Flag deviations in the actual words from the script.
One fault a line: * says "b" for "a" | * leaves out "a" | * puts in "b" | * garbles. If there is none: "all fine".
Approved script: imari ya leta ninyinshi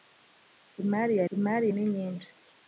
* says "imari" for "leta"